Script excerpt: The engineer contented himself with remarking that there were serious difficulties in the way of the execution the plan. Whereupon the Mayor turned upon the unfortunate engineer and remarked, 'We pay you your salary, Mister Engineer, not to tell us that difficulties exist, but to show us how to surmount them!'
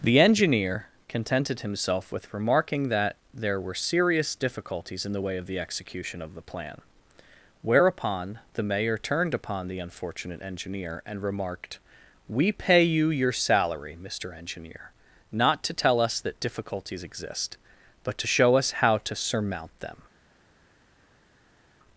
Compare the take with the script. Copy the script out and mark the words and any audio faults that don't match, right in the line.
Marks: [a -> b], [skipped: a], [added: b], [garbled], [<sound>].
The engineer contented himself with remarking that there were serious difficulties in the way of the execution [added: of] the plan. Whereupon the Mayor turned upon the unfortunate engineer and remarked, 'We pay you your salary, Mister Engineer, not to tell us that difficulties exist, but to show us how to surmount them!'